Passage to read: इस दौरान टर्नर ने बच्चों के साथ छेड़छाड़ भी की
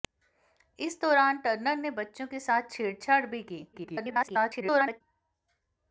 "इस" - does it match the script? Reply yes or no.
yes